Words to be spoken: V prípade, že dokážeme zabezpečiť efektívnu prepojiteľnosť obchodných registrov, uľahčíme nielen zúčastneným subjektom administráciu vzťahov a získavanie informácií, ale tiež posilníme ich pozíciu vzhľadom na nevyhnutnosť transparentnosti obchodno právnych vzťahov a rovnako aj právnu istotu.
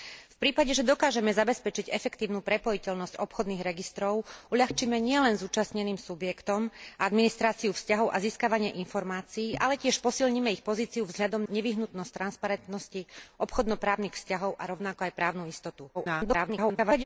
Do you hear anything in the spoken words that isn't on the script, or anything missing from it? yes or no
yes